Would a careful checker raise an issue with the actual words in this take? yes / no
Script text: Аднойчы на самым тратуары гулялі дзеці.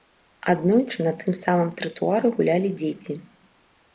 yes